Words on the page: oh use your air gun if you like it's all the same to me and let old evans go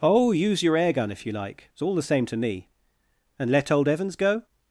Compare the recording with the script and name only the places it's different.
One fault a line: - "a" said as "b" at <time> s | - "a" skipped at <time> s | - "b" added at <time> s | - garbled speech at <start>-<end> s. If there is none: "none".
none